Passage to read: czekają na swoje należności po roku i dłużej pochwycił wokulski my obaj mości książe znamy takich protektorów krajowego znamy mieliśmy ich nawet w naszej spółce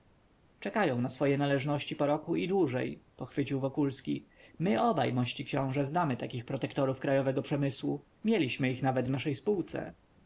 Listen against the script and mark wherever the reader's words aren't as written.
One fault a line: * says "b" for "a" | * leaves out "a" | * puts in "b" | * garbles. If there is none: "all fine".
* says "przemysłu" for "znamy"